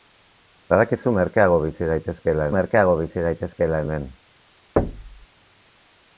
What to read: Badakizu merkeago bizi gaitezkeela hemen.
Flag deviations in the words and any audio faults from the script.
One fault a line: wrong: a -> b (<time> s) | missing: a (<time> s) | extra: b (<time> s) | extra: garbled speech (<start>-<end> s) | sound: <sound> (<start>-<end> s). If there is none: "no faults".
extra: merkeago bizi gaitezkeela (2.6 s)
sound: thud (4.8-5.3 s)